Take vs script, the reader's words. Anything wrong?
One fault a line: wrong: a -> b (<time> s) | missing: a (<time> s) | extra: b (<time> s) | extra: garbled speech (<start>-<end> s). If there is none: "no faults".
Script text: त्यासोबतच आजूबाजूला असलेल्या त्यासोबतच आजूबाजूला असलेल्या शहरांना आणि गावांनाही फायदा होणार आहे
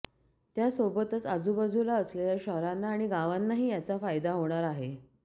missing: त्यासोबतच आजूबाजूला असलेल्या (2.4 s)
extra: याचा (3.7 s)